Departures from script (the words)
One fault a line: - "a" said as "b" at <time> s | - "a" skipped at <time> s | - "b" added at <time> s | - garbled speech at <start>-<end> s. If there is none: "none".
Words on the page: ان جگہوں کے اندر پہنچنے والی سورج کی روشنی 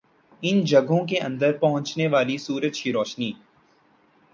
none